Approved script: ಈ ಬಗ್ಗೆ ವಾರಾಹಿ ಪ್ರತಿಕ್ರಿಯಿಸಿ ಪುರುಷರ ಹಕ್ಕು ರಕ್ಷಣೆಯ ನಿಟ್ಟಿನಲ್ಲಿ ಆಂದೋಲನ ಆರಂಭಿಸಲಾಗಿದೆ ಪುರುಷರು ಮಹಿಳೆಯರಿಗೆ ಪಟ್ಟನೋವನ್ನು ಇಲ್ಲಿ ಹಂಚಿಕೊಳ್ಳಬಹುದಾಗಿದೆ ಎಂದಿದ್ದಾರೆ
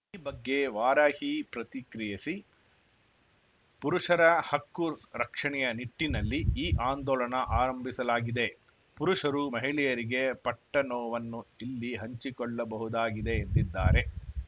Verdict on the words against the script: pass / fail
fail